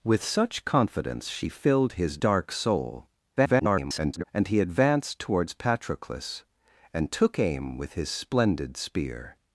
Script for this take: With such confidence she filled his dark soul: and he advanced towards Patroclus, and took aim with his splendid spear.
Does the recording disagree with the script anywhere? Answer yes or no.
yes